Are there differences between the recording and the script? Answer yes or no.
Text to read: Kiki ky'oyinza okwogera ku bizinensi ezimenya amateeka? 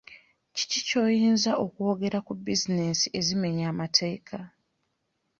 no